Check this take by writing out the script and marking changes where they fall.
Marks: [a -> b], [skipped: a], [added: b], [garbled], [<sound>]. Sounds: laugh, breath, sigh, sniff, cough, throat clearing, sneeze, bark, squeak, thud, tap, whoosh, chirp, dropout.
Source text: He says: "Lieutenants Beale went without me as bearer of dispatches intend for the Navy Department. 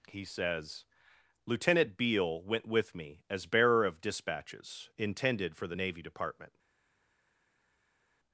He says: ["Lieutenants -> Lieutenant] Beale went [without -> with] me as bearer of dispatches [intend -> intended] for the Navy Department.